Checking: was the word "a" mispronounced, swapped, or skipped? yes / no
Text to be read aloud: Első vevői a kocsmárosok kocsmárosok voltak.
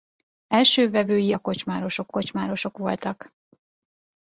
no